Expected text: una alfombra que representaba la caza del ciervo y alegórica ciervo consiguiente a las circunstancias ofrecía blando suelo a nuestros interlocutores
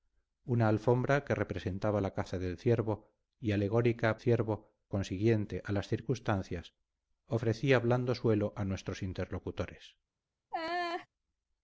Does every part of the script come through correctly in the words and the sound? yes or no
no